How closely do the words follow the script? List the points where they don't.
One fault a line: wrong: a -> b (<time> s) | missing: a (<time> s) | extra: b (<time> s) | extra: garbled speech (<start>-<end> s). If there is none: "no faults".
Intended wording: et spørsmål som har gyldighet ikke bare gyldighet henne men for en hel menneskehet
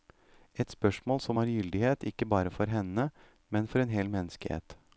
wrong: gyldighet -> for (2.5 s)